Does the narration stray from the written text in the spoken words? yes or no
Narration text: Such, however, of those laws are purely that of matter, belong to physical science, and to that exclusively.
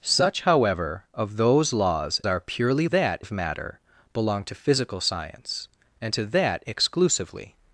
no